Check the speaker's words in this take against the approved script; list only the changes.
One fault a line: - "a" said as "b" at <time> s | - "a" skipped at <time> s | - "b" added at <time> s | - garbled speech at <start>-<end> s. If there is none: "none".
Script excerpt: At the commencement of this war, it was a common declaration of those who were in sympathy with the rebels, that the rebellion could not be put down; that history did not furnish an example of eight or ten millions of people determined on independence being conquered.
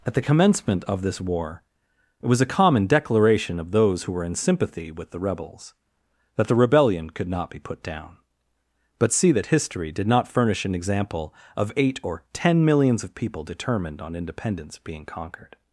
- "but see" added at 9.0 s